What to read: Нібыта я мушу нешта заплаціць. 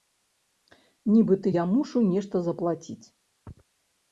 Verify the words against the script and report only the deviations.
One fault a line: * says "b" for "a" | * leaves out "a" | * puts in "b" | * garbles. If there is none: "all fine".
all fine